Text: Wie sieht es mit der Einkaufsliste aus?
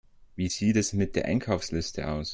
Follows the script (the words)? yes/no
yes